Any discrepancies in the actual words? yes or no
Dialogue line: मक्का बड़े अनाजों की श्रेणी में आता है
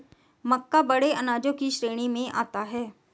no